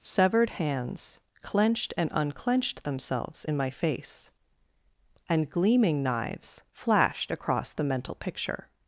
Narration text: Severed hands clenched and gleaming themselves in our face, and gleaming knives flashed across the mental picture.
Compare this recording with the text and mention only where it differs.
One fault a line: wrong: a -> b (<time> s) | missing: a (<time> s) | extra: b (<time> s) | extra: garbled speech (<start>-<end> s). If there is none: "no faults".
wrong: gleaming -> unclenched (2.1 s)
wrong: our -> my (3.6 s)